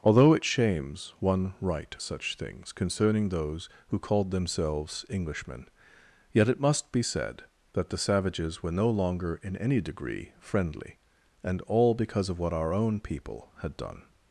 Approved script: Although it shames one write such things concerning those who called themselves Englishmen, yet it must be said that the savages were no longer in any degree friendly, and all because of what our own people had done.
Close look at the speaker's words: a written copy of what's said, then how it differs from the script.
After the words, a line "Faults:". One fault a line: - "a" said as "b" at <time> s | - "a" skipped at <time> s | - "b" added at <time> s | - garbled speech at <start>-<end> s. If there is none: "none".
Although it shames one write such things concerning those who called themselves Englishmen, yet it must be said that the savages were no longer in any degree friendly, and all because of what our own people had done.
Faults:
none